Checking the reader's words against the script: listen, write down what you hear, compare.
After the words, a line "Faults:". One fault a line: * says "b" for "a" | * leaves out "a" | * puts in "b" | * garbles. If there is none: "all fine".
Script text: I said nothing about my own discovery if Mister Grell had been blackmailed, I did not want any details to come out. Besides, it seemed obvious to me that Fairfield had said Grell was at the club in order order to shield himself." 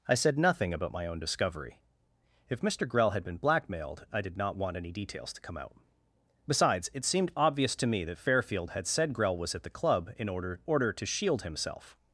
I said nothing about my own discovery if Mister Grell had been blackmailed, I did not want any details to come out. Besides, it seemed obvious to me that Fairfield had said Grell was at the club in order order to shield himself."
Faults:
all fine